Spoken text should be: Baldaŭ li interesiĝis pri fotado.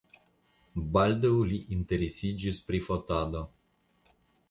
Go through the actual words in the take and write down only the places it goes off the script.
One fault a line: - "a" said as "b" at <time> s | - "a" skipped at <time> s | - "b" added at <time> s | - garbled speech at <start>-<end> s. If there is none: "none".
none